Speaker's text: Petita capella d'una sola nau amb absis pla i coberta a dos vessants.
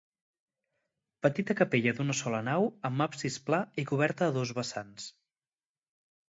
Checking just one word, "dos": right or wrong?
right